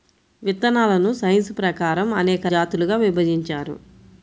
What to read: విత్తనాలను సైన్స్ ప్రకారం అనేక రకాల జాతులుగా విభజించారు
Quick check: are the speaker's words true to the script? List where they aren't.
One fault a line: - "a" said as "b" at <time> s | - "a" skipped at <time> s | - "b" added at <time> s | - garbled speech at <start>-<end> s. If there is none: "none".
- "రకాల" skipped at 2.5 s